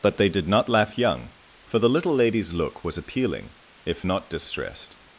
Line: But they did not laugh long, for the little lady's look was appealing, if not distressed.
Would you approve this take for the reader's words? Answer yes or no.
no